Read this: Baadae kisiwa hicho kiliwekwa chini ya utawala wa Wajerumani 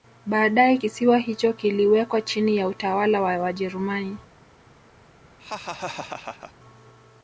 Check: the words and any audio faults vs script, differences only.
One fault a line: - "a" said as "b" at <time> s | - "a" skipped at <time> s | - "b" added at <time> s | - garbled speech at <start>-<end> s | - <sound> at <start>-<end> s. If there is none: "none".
- laugh at 5.4-6.5 s